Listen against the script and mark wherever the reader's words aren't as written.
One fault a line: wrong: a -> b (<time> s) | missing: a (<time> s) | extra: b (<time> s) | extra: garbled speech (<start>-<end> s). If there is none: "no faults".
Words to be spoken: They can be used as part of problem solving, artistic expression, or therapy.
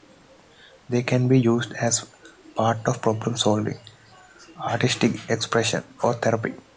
no faults